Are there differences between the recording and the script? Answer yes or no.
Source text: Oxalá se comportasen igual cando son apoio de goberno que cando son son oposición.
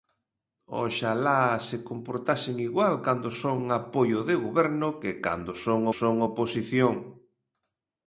no